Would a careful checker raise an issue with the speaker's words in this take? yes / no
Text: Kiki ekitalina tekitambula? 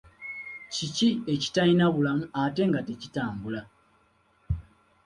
yes